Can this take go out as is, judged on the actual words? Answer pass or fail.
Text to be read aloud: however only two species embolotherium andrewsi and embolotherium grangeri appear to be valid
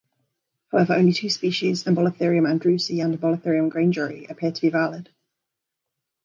pass